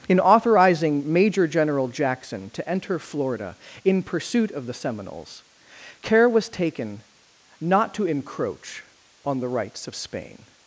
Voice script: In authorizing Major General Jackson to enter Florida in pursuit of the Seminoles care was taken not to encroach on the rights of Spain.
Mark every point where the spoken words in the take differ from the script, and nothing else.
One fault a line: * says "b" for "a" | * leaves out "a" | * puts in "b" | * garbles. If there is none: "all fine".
all fine